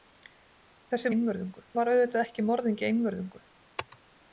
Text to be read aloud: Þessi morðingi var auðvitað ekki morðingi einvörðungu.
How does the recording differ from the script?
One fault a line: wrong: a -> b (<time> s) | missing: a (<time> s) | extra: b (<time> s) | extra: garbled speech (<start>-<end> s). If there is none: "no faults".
wrong: morðingi -> einvörðungu (1.1 s)